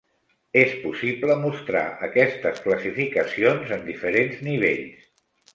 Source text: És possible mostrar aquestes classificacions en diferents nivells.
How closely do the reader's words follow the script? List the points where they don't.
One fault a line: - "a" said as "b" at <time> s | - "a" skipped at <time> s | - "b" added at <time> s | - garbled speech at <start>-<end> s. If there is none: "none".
none